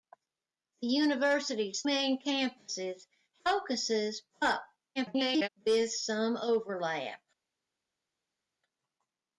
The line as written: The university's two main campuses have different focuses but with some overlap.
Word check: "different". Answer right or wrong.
wrong